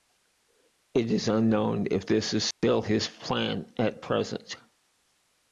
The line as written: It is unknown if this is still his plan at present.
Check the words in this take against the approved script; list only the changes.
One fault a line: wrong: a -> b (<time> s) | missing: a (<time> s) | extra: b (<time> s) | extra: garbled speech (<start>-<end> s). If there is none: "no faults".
no faults